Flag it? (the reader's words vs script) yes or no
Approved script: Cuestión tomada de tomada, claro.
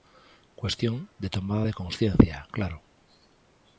yes